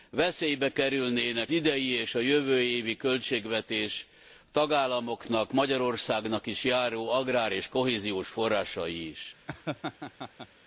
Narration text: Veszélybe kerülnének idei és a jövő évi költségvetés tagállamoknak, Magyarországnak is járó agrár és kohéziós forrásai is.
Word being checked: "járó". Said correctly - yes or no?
yes